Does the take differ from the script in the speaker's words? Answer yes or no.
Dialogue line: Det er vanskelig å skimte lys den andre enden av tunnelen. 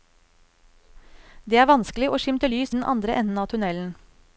no